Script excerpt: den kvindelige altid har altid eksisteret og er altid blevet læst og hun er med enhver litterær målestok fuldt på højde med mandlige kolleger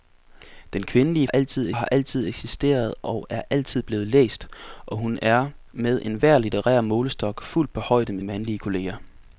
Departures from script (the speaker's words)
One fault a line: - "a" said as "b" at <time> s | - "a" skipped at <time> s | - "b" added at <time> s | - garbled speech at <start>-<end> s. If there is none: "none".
none